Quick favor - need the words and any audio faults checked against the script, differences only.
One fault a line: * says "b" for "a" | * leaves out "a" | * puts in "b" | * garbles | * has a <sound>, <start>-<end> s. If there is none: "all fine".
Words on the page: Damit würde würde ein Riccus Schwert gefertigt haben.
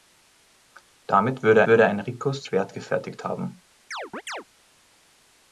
* has a chirp, 3.9-4.4 s